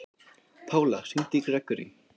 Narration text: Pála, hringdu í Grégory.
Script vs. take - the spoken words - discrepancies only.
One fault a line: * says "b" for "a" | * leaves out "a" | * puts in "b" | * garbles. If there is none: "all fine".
all fine